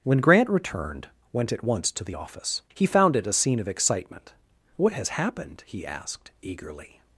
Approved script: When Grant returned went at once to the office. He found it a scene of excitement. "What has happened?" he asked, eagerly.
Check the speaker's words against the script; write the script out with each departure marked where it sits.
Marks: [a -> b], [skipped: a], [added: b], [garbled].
When Grant returned went at once to the office. He found it a scene of excitement. "What has happened?" he asked, eagerly.